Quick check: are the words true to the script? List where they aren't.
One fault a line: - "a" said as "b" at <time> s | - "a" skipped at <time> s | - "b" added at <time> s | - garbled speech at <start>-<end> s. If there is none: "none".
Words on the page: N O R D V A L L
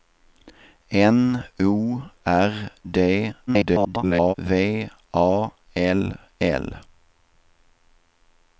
- garbled speech at 3.5-4.3 s